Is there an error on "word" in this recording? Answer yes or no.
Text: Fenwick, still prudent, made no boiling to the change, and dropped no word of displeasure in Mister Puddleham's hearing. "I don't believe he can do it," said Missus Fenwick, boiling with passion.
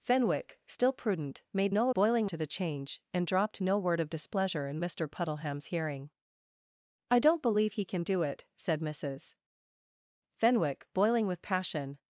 no